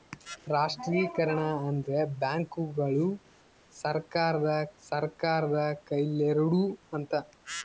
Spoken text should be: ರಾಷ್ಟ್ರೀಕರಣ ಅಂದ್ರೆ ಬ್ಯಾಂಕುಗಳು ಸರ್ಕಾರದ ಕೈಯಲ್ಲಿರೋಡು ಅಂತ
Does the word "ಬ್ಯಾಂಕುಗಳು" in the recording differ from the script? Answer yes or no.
no